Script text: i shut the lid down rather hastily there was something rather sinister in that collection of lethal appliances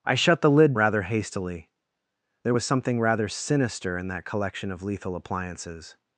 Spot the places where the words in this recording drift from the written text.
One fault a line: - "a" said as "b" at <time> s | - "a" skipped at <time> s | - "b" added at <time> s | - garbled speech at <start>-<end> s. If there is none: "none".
- "down" skipped at 0.7 s